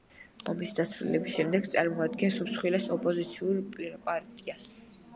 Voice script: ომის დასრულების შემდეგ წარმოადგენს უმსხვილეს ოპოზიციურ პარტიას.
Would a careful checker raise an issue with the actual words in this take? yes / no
no